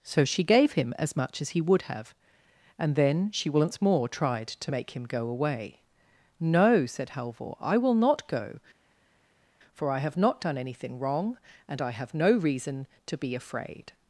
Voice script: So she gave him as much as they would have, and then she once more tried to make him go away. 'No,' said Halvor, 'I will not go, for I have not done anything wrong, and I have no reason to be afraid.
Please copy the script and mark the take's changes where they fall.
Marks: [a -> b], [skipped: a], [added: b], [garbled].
So she gave him as much as [they -> he] would have, and then she once more tried to make him go away. 'No,' said Halvor, 'I will not go, for I have not done anything wrong, and I have no reason to be afraid.